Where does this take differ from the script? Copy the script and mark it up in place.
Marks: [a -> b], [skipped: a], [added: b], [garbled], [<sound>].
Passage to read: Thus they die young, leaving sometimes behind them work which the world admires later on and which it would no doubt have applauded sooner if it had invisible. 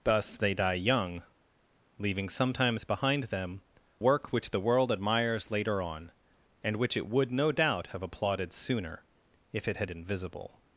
Thus they die young, leaving sometimes behind them work which the world admires later on and which it would no doubt have applauded sooner if it had invisible.